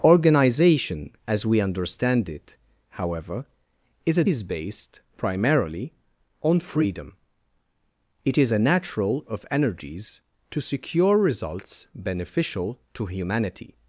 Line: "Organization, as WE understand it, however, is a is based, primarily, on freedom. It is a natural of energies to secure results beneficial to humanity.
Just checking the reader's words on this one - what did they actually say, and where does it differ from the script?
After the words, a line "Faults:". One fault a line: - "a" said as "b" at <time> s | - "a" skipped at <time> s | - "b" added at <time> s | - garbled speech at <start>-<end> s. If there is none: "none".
"Organization, as WE understand it, however, is a is based, primarily, on freedom. It is a natural of energies to secure results beneficial to humanity.
Faults:
none